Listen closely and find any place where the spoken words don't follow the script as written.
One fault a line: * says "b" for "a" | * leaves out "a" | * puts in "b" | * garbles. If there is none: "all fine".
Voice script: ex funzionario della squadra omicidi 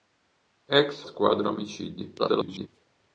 * leaves out "funzionario della"
* garbles